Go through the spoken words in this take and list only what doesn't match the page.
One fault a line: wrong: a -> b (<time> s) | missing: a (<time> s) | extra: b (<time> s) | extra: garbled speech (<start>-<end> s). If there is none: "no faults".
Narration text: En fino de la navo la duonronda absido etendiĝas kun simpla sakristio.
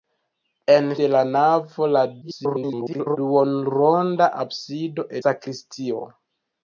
missing: fino (0.9 s)
extra: garbled speech (2.2-3.2 s)
missing: etendiĝas kun simpla (5.1 s)